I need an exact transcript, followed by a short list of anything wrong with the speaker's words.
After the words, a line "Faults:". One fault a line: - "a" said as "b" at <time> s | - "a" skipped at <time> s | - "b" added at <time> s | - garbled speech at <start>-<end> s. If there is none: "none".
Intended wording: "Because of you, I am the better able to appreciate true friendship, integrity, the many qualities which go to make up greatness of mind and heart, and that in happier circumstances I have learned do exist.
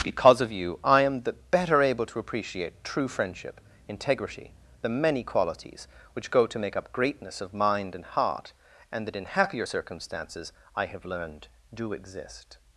"Because of you, I am the better able to appreciate true friendship, integrity, the many qualities which go to make up greatness of mind and heart, and that in happier circumstances I have learned do exist.
Faults:
none